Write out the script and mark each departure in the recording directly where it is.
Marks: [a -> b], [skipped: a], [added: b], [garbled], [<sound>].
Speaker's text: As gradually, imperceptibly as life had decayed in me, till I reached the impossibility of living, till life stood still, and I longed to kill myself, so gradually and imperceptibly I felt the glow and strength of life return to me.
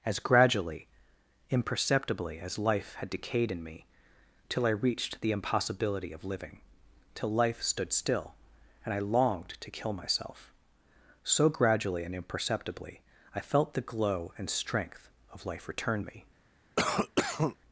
As gradually, imperceptibly as life had decayed in me, till I reached the impossibility of living, till life stood still, and I longed to kill myself, so gradually and imperceptibly I felt the glow and strength of life return [skipped: to] me. [cough]